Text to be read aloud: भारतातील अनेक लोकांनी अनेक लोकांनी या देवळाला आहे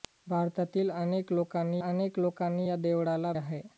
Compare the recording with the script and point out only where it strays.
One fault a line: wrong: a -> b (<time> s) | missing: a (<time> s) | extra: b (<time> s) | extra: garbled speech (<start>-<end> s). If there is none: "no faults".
no faults